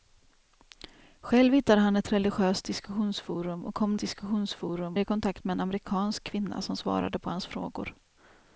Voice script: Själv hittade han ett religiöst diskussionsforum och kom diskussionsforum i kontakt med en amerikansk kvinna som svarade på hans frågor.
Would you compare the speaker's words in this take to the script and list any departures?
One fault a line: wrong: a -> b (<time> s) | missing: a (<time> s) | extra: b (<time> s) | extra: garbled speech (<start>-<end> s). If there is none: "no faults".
no faults